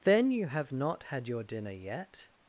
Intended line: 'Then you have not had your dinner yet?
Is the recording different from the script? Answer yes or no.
no